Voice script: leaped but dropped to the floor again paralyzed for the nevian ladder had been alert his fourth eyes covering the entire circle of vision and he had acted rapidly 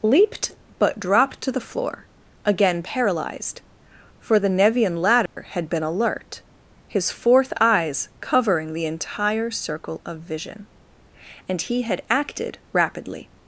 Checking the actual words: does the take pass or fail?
pass